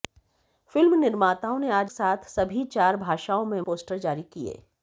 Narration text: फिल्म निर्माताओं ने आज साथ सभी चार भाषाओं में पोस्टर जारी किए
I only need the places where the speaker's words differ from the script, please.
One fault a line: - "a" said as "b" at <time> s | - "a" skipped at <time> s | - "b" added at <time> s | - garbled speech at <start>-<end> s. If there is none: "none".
none